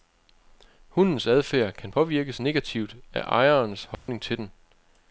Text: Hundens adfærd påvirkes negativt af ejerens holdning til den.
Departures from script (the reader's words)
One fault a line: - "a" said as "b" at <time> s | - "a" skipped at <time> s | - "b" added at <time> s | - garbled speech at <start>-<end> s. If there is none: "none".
- "kan" added at 1.7 s